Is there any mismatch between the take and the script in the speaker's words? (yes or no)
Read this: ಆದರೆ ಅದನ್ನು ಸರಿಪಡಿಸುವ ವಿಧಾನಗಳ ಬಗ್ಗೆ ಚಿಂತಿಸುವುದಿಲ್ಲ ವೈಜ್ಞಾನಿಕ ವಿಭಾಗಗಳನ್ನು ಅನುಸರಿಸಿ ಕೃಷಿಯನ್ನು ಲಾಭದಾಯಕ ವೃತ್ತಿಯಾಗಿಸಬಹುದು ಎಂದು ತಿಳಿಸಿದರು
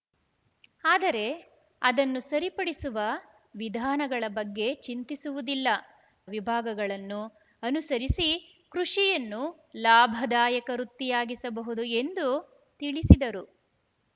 yes